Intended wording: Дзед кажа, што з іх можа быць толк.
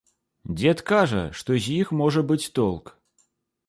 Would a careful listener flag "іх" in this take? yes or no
no